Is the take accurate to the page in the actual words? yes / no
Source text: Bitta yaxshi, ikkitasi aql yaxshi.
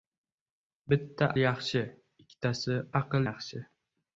yes